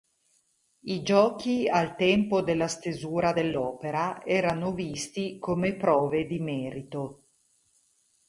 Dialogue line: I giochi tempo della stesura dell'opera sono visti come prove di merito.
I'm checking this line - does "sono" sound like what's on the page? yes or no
no